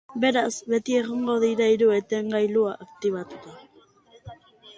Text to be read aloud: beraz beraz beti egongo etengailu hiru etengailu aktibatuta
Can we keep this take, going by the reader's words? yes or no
no